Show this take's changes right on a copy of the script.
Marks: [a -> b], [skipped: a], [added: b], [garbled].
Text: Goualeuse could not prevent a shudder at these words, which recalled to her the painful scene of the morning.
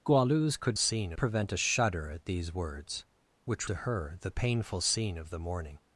Goualeuse could [not -> scene] prevent a shudder at these words, which [skipped: recalled] to her the painful scene of the morning.